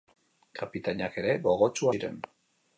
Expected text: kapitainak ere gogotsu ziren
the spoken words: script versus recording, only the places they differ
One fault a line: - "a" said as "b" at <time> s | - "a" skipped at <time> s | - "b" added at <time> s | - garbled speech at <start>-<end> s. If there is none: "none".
none